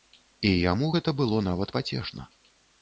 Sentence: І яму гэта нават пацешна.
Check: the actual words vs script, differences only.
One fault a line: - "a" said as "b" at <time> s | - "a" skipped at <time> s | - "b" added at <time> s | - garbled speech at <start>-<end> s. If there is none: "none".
- "было" added at 1.2 s